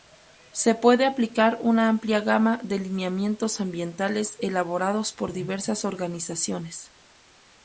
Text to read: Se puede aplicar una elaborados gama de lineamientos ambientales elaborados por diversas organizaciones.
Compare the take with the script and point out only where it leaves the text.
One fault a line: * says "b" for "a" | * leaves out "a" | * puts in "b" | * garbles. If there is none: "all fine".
* says "amplia" for "elaborados"